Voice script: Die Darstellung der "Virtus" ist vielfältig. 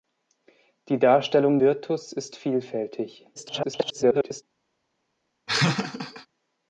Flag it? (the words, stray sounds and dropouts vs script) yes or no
yes